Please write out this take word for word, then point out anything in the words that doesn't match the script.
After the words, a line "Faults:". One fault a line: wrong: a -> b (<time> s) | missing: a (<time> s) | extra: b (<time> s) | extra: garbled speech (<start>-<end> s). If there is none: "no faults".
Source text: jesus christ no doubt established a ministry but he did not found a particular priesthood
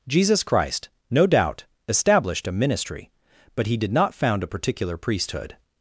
jesus christ no doubt established a ministry but he did not found a particular priesthood
Faults:
no faults